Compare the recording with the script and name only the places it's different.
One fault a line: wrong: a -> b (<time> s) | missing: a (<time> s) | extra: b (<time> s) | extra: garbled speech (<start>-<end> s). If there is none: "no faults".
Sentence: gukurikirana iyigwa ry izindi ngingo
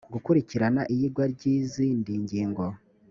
no faults